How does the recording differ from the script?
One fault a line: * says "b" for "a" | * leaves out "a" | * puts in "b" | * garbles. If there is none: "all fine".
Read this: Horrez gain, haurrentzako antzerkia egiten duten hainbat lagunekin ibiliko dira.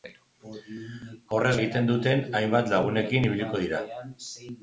* leaves out "gain haurrentzako antzerkia"